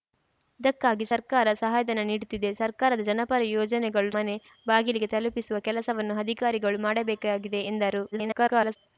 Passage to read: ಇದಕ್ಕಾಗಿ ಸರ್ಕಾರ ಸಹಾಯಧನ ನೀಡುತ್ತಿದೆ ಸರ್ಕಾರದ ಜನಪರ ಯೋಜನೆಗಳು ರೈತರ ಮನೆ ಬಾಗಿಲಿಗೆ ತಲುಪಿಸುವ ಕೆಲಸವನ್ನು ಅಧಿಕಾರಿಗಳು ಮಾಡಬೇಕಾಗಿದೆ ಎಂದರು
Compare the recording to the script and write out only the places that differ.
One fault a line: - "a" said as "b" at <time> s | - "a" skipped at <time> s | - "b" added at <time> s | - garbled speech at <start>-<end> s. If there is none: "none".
- "ರೈತರ" skipped at 4.1 s
- garbled speech at 8.1-8.8 s